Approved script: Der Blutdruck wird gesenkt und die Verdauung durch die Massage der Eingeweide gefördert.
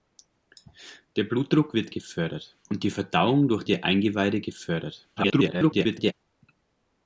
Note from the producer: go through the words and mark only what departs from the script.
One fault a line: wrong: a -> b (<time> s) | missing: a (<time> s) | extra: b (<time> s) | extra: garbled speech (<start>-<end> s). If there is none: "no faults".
wrong: gesenkt -> gefördert (1.9 s)
missing: die Massage (3.6 s)
extra: garbled speech (5.2-6.1 s)